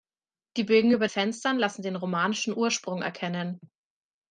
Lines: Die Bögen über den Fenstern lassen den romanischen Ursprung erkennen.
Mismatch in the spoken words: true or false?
true